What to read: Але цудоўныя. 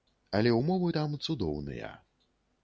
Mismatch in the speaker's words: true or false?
true